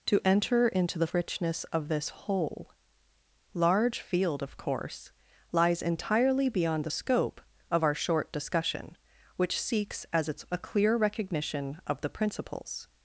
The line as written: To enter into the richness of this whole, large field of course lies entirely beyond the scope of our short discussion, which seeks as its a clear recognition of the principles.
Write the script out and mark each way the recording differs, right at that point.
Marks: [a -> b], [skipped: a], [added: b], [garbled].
To enter into the richness of this whole, large field of course lies entirely beyond the scope of our short discussion, which seeks as its a clear recognition of the principles.